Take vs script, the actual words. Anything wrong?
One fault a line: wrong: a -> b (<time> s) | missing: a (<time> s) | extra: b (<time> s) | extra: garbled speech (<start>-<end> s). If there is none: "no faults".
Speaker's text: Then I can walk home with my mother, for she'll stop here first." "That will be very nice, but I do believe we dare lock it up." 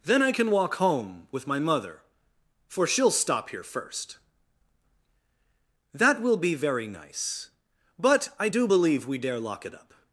no faults